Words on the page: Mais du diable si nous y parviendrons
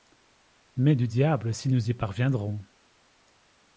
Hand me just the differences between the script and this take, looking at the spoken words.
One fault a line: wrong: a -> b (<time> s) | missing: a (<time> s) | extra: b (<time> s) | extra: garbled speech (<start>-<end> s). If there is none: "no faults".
no faults